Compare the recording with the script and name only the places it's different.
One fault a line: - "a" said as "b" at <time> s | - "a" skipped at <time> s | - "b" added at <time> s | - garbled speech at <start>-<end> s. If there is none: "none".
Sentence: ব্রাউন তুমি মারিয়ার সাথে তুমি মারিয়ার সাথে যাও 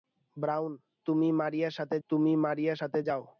none